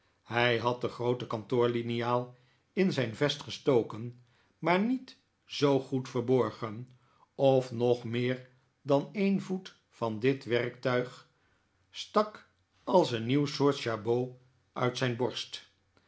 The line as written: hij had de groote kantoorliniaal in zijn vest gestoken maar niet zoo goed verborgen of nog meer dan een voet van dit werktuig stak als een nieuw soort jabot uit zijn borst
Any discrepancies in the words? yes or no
no